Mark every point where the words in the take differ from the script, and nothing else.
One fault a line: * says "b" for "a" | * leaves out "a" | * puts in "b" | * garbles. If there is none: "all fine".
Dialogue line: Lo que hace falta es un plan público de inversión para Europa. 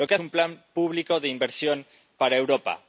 * leaves out "hace falta es"